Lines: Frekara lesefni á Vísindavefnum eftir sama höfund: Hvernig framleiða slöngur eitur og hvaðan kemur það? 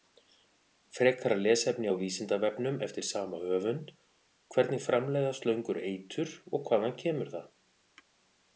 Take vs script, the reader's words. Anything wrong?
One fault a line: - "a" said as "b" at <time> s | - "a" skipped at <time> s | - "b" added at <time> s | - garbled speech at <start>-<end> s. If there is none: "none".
none